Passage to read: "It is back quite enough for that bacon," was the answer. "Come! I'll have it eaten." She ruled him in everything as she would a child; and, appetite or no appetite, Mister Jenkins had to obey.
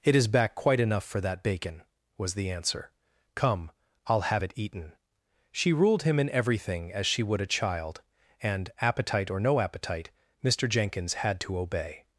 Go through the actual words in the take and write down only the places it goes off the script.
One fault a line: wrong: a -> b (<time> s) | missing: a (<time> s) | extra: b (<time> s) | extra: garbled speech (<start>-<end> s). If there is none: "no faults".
no faults